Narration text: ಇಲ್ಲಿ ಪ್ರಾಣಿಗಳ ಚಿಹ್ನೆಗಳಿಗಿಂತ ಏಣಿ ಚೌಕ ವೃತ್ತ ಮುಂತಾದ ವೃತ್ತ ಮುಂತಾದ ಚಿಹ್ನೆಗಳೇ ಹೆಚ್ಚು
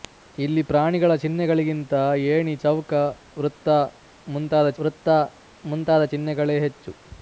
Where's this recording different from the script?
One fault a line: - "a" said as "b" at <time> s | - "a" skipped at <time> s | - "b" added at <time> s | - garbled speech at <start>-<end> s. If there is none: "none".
none